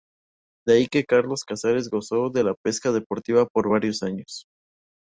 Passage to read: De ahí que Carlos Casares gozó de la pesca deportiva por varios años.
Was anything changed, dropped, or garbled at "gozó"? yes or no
no